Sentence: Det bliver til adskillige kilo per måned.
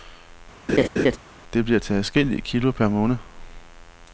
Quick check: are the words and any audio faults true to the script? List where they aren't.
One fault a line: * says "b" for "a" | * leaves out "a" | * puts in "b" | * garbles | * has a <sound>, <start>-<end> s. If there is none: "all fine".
* has a laugh, 0.7-1.2 s